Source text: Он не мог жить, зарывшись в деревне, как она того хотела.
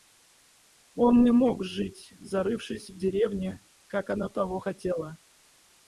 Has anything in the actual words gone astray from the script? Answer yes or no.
no